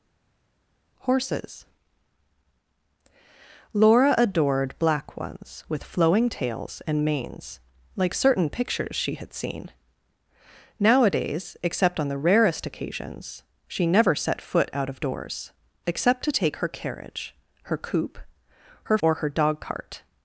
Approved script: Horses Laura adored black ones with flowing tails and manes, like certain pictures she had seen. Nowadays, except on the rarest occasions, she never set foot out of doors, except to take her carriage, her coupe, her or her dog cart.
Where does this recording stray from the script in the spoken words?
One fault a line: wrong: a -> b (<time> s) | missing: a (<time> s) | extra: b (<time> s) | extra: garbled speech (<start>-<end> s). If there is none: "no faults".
no faults